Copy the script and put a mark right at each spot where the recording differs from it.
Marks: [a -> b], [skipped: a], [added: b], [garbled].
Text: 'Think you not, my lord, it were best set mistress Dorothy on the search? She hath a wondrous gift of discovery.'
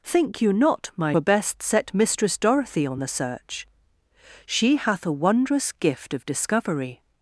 'Think you not, my [skipped: lord, it] were best set mistress Dorothy on the search? She hath a wondrous gift of discovery.'